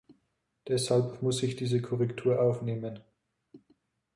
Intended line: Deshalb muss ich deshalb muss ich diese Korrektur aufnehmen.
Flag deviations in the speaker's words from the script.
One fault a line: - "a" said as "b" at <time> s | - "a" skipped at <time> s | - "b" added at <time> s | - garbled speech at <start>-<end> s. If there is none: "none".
- "deshalb muss ich" skipped at 1.6 s